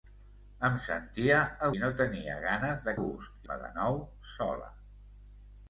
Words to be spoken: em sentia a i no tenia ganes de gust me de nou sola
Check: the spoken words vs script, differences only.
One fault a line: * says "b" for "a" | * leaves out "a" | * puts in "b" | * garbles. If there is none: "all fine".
all fine